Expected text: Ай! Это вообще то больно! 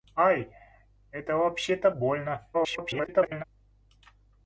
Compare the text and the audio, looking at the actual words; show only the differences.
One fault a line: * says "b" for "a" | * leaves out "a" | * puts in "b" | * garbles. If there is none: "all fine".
* garbles